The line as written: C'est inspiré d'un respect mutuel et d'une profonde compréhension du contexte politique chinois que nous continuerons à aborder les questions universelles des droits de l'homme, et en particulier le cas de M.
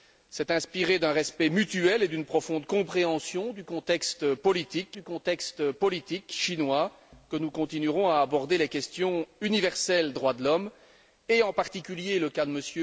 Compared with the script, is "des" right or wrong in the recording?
wrong